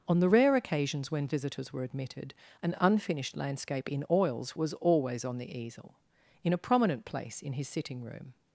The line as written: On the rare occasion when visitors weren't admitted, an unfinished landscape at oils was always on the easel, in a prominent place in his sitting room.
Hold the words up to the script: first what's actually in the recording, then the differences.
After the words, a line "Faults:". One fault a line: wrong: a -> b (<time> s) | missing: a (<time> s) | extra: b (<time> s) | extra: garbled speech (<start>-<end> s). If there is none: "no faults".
On the rare occasions when visitors were admitted, an unfinished landscape in oils was always on the easel, in a prominent place in his sitting room.
Faults:
wrong: occasion -> occasions (0.6 s)
wrong: weren't -> were (1.7 s)
wrong: at -> in (3.9 s)